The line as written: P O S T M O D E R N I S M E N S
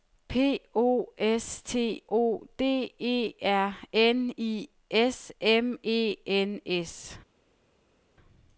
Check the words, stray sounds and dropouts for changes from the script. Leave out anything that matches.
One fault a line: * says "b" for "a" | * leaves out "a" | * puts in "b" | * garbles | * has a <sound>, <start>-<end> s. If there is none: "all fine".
* leaves out "M"